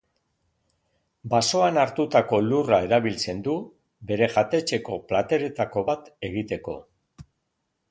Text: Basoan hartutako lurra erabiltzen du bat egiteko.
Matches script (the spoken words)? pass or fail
fail